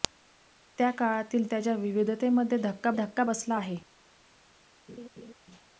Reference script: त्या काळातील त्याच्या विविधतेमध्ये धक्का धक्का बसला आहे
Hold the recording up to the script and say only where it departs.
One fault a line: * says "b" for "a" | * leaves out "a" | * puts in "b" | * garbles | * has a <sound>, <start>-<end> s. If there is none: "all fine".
* has a laugh, 4.9-5.3 s